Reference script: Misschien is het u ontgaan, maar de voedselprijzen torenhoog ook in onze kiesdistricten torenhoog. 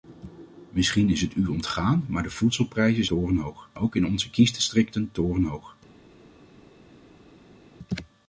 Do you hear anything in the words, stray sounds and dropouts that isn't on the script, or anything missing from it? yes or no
no